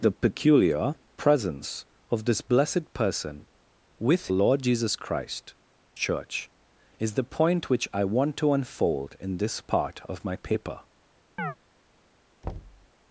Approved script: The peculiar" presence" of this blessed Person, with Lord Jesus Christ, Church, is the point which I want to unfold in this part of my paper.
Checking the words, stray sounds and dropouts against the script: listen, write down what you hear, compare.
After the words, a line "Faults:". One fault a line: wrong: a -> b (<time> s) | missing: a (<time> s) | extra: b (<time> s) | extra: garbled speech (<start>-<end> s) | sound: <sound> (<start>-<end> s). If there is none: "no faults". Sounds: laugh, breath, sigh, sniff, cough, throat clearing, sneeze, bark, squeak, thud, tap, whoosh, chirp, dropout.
The peculiar" presence" of this blessed Person, with Lord Jesus Christ, Church, is the point which I want to unfold in this part of my paper.
Faults:
sound: chirp (11.4-11.6 s)
sound: thud (12.4-12.9 s)